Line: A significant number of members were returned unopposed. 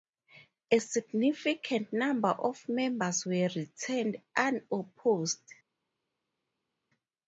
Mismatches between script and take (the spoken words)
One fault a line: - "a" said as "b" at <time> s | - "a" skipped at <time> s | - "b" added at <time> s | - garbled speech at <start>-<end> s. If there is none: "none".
none